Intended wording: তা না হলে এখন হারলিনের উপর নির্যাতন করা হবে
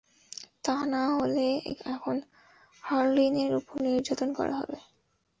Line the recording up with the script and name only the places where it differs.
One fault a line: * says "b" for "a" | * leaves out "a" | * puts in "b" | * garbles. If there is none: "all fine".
all fine